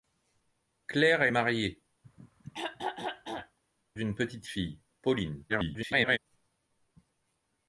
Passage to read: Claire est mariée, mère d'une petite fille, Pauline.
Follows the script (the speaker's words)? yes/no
no